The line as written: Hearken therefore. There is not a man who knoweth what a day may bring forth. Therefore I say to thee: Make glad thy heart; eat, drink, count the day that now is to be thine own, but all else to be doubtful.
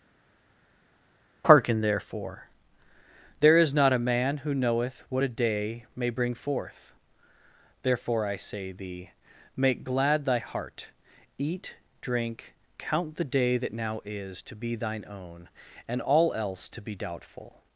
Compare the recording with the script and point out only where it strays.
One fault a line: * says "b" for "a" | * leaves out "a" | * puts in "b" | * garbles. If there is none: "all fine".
* leaves out "to"
* says "and" for "but"